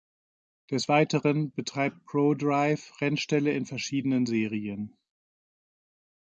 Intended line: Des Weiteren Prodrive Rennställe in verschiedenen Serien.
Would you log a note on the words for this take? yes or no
yes